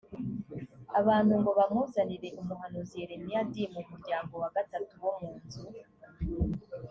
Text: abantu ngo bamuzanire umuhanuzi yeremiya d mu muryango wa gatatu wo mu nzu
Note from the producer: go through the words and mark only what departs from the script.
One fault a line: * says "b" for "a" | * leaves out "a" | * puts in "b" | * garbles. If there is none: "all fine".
all fine